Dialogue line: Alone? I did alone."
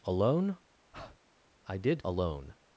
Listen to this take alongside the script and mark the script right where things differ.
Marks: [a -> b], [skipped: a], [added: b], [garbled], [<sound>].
Alone? [breath] I did alone."